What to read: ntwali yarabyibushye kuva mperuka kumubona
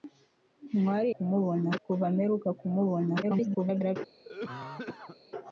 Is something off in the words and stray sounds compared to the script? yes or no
yes